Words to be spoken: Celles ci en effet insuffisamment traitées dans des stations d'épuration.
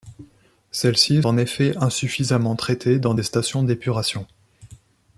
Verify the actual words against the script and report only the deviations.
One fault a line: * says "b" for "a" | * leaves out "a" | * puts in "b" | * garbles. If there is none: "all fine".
all fine